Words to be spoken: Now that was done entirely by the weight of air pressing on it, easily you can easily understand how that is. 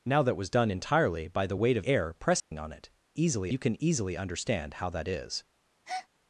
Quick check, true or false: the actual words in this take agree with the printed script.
true